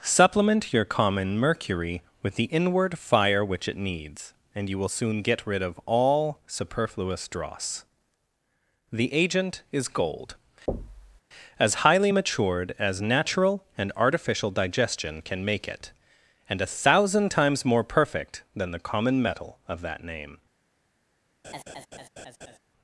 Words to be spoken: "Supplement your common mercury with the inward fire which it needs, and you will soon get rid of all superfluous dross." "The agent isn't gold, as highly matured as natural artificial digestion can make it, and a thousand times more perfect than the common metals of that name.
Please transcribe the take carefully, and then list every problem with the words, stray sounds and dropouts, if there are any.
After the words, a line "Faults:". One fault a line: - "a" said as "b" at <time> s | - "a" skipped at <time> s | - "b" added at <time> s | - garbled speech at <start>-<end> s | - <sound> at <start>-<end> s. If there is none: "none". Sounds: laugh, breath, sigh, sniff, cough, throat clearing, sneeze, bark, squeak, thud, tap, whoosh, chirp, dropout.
"Supplement your common mercury with the inward fire which it needs, and you will soon get rid of all superfluous dross." "The agent is gold, as highly matured as natural and artificial digestion can make it, and a thousand times more perfect than the common metal of that name.
Faults:
- "isn't" said as "is" at 9.7 s
- thud at 10.7-11.2 s
- "and" added at 13.8 s
- "metals" said as "metal" at 19.2 s
- laugh at 21.4-22.6 s